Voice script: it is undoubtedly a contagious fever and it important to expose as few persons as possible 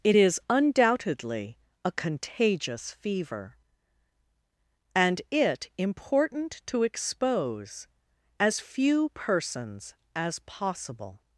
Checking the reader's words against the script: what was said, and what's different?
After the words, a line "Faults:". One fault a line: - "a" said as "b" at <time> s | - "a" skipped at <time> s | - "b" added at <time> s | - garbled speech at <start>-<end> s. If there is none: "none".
it is undoubtedly a contagious fever and it important to expose as few persons as possible
Faults:
none